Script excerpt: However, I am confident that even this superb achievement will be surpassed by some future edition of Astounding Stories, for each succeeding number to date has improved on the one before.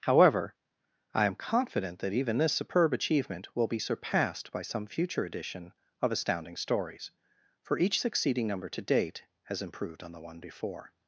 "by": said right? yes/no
yes